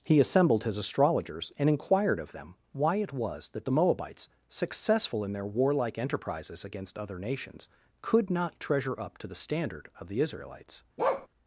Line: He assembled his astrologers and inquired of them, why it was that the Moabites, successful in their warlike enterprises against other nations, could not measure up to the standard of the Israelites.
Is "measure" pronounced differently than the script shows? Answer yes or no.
yes